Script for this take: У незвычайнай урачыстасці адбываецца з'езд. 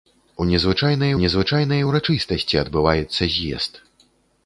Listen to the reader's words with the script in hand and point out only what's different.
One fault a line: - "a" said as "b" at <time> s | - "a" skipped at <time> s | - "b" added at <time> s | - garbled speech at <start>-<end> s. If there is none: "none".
- "незвычайнай" added at 1.2 s